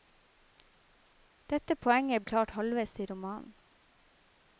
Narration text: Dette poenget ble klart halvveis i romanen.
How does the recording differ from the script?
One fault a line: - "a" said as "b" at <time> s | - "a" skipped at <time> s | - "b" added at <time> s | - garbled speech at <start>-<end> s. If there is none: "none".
- "ble" skipped at 2.2 s